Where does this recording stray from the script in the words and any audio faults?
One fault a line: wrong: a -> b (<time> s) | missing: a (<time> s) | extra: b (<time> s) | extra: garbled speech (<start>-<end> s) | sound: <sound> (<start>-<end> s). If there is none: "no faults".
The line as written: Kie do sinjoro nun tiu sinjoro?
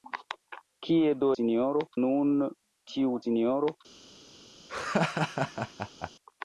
sound: laugh (4.7-6.1 s)